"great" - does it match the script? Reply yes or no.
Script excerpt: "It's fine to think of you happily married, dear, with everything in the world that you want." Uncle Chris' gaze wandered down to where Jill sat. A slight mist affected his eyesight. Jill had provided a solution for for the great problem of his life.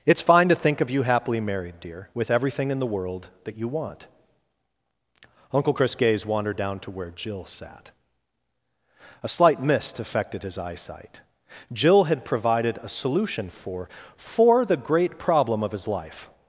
yes